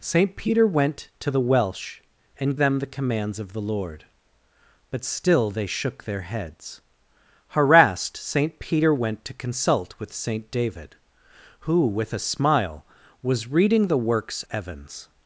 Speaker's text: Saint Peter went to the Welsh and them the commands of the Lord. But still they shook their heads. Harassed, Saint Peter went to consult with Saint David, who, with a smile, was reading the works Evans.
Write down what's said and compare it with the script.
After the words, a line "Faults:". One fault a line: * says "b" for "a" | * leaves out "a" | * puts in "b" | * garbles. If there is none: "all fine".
Saint Peter went to the Welsh and them the commands of the Lord. But still they shook their heads. Harassed, Saint Peter went to consult with Saint David, who, with a smile, was reading the works Evans.
Faults:
all fine